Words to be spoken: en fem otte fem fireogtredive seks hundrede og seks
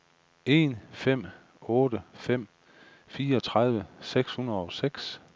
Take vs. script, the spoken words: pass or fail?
pass